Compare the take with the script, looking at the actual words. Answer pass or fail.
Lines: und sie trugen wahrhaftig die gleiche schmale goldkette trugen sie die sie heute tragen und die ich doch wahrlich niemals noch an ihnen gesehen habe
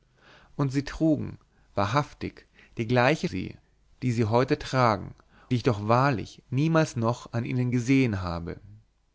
fail